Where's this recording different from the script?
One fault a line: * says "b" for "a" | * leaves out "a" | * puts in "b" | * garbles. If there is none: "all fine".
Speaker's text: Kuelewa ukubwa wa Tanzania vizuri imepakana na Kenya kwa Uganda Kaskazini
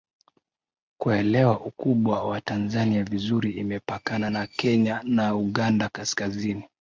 * says "na" for "kwa"